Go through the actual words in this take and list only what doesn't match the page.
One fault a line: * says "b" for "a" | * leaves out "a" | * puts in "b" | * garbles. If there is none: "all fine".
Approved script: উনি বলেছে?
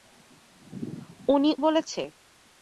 all fine